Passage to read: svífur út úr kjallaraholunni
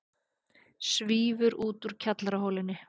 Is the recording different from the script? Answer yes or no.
no